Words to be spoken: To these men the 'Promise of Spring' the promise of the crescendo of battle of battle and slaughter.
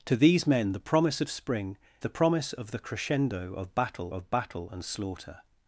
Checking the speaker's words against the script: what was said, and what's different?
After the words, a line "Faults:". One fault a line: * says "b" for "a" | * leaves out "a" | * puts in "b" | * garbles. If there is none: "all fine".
To these men the 'Promise of Spring' the promise of the crescendo of battle of battle and slaughter.
Faults:
all fine